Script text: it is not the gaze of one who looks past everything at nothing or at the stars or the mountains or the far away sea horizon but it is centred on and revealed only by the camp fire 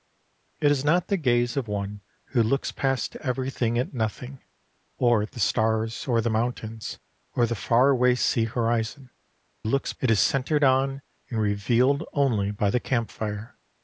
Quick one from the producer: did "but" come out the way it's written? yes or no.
no